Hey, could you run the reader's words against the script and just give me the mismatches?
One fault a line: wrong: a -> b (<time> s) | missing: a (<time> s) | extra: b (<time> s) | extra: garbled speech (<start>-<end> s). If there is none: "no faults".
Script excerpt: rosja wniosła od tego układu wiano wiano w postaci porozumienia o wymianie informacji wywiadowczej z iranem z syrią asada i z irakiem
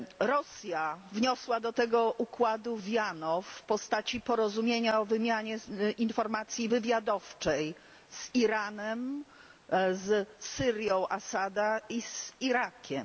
wrong: od -> do (1.6 s)
missing: wiano (3.4 s)